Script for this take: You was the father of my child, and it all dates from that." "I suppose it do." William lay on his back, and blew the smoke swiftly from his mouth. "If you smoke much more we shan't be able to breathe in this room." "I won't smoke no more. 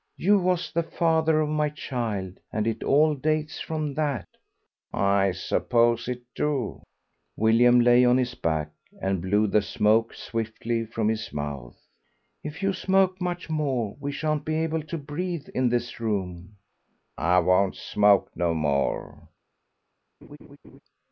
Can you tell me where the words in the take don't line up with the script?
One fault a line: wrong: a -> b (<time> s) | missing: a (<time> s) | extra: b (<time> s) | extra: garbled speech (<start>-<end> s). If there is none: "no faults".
no faults